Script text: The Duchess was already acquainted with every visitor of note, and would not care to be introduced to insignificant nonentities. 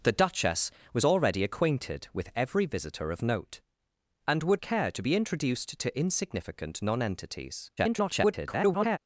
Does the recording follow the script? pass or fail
fail